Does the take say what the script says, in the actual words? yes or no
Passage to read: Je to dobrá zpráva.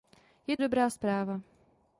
no